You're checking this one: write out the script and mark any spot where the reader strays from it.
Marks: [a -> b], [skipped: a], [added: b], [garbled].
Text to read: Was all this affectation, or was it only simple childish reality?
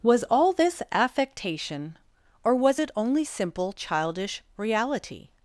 Was all this affectation, or was it only simple childish reality?